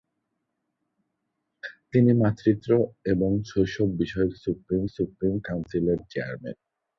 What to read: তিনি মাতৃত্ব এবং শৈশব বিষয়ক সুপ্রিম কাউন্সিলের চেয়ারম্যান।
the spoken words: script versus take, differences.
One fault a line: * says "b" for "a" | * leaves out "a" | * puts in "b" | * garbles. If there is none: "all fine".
* puts in "সুপ্রিম"